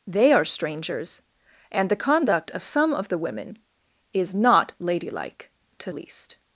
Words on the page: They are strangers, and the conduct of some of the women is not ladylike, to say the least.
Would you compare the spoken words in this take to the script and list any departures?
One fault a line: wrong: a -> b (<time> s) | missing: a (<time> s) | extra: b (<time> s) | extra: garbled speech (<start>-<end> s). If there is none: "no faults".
missing: say the (5.9 s)